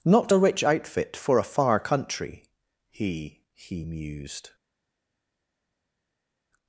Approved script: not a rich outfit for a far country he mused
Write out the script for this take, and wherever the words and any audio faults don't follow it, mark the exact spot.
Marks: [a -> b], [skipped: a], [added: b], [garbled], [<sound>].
not a rich outfit for a far country he [added: he] mused